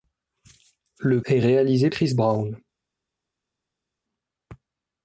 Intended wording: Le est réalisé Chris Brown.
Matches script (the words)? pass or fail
pass